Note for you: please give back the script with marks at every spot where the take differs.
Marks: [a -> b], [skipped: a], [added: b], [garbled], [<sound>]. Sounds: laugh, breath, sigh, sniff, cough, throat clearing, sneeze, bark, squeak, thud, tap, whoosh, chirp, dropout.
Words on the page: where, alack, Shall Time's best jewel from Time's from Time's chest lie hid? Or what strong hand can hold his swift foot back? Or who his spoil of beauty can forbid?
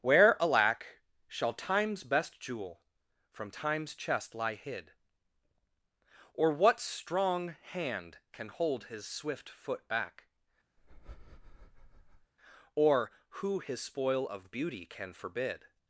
where, alack, Shall Time's best jewel from Time's [skipped: from Time's] chest lie hid? Or what strong hand can hold his swift foot back? [breath] Or who his spoil of beauty can forbid?